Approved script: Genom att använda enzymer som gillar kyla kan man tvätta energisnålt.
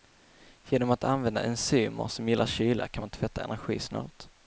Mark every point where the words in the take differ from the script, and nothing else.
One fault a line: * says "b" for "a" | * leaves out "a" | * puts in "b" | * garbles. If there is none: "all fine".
all fine